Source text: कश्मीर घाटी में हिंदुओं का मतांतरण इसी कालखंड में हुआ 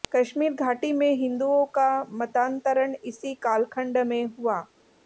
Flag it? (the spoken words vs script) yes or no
no